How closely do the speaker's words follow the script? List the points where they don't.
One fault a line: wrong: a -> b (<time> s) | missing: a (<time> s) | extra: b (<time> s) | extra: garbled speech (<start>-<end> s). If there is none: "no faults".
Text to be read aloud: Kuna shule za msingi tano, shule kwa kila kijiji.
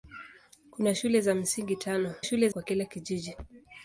no faults